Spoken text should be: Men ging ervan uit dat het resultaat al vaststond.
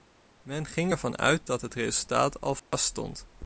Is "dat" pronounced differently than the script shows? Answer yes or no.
no